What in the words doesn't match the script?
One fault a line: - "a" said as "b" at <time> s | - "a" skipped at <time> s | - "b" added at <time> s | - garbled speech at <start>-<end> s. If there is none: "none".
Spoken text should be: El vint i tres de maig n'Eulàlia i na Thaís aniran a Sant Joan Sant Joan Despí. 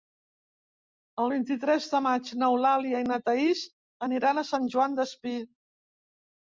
- "Sant Joan" skipped at 5.0 s